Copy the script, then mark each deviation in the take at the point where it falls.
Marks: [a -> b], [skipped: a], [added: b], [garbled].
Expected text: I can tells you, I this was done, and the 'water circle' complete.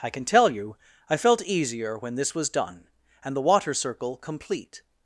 I can [tells -> tell] you, I [added: felt easier when] this was done, and the 'water circle' complete.